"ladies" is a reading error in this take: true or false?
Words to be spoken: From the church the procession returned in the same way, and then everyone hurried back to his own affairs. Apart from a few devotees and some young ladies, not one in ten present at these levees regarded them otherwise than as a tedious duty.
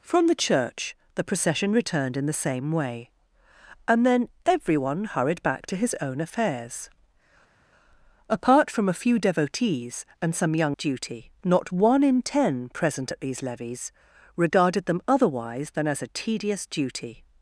true